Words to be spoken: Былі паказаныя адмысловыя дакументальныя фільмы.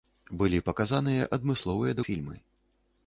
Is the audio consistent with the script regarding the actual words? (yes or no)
no